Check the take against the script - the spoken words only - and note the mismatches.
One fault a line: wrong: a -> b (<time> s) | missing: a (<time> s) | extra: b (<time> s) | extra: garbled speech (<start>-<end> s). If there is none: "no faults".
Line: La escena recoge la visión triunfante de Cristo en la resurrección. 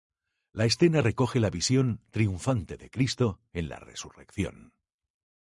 no faults